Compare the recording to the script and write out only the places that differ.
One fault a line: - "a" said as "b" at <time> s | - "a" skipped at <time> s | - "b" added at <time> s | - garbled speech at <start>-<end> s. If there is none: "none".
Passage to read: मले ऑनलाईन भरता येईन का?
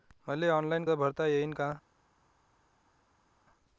none